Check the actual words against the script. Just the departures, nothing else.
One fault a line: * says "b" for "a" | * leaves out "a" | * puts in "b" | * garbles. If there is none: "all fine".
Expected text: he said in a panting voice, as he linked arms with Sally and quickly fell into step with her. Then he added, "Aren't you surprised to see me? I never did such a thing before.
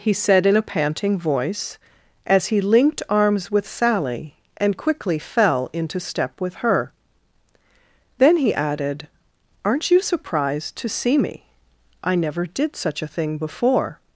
all fine